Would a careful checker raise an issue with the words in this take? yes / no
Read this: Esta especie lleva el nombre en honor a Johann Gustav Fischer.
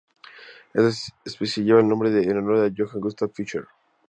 no